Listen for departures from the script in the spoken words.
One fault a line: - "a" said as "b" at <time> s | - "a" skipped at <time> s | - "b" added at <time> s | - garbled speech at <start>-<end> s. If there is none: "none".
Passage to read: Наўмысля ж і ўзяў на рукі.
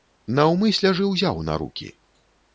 none